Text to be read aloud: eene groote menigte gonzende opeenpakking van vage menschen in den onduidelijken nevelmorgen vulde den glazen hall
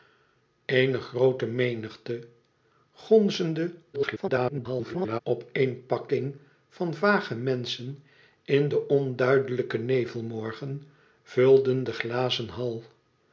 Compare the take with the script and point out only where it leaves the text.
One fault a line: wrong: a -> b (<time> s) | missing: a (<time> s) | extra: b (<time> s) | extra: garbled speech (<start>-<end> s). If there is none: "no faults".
extra: garbled speech (3.9-5.2 s)